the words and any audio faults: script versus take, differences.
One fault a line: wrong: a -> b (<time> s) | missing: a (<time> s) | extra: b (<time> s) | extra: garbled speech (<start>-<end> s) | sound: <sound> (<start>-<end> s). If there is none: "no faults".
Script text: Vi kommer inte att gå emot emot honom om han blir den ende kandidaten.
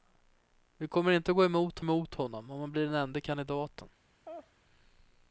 sound: laugh (4.2-4.5 s)